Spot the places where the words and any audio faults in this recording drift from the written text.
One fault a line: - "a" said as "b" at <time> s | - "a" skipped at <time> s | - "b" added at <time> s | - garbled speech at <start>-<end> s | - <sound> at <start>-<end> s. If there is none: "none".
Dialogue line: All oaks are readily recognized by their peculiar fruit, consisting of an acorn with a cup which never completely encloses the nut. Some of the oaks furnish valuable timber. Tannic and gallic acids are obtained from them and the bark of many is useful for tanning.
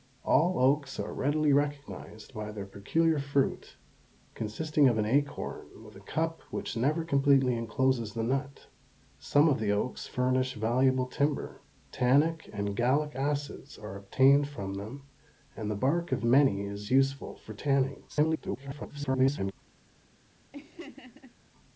- garbled speech at 18.1-19.5 s
- laugh at 20.5-21.4 s